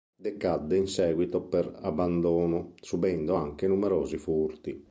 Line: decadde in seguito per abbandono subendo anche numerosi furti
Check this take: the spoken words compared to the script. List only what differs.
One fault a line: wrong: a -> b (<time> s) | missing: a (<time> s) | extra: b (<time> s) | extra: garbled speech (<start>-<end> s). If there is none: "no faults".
no faults